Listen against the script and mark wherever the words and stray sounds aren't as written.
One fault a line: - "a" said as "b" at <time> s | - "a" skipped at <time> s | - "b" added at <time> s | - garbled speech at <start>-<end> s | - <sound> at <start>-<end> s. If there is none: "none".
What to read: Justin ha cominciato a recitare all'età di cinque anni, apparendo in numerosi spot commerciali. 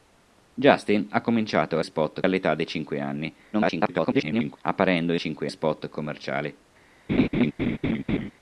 - "recitare" said as "spot" at 1.8 s
- garbled speech at 3.5-4.6 s
- "numerosi" said as "cinque" at 5.2 s
- laugh at 7.1-8.3 s